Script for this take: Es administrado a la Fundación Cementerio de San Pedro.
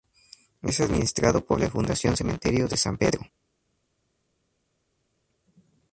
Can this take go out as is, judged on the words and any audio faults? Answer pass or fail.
fail